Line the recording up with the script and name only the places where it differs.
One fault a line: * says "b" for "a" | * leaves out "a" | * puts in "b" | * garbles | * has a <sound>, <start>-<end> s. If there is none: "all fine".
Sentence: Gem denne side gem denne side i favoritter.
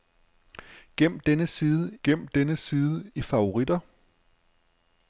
all fine